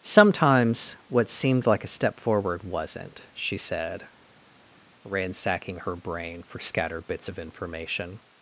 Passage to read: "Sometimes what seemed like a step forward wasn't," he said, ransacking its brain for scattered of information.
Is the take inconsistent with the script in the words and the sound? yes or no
yes